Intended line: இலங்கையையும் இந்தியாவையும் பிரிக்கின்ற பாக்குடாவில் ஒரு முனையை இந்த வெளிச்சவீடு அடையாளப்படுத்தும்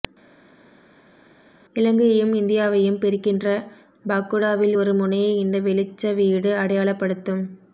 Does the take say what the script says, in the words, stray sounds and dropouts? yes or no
yes